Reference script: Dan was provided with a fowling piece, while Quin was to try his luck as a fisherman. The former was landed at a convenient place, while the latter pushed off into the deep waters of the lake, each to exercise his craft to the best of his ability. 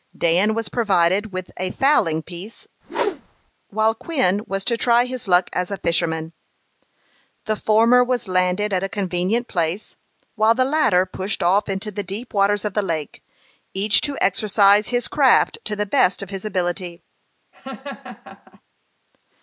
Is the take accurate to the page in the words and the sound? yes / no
no